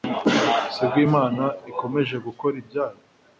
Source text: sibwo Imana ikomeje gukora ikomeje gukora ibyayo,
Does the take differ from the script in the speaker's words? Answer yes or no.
yes